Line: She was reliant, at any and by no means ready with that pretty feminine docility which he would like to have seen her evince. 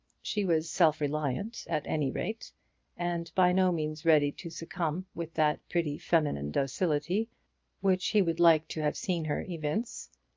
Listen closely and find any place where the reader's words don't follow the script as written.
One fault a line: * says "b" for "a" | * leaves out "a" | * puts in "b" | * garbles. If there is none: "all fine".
* puts in "self"
* puts in "rate"
* puts in "to succumb"